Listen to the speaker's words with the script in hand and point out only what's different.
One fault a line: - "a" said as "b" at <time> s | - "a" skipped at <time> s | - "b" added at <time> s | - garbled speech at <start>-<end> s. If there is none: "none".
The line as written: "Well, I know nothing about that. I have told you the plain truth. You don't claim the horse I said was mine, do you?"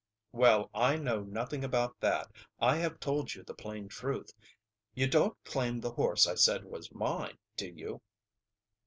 none